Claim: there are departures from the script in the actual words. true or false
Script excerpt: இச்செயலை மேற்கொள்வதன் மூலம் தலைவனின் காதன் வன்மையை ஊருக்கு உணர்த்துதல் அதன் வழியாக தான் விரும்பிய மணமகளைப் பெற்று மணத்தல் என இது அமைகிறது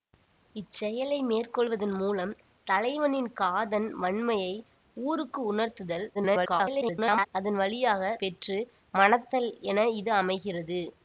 true